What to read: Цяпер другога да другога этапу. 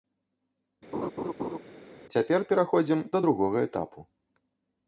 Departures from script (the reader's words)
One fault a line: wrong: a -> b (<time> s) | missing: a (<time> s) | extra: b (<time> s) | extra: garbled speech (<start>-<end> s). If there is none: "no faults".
wrong: другога -> пераходзім (2.5 s)